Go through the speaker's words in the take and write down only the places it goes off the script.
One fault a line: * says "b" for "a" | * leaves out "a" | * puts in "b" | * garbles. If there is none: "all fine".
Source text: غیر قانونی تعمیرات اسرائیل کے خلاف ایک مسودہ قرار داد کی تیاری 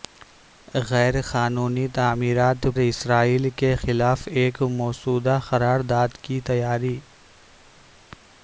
all fine